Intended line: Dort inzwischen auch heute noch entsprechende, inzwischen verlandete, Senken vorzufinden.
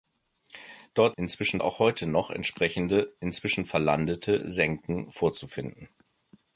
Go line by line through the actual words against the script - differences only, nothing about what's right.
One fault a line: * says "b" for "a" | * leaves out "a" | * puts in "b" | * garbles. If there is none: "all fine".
all fine